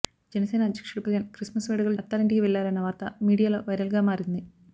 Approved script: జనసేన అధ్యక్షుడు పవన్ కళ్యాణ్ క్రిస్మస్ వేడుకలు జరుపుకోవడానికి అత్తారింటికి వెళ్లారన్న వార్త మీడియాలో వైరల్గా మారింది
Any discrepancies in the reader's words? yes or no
yes